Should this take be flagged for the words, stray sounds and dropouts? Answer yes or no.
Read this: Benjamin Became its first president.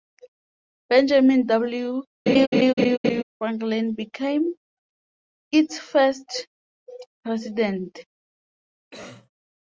yes